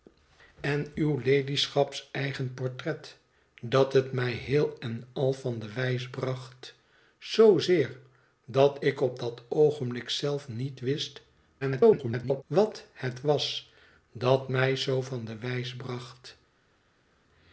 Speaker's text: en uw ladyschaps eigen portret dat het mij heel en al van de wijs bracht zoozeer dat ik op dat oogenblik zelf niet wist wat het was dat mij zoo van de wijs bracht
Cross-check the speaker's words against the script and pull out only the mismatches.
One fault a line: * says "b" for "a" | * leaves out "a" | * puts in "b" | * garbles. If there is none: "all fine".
* garbles